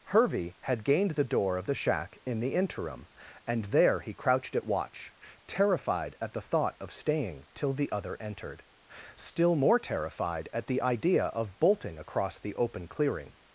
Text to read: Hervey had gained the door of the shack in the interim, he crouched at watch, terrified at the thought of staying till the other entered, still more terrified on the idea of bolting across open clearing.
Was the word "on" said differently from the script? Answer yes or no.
yes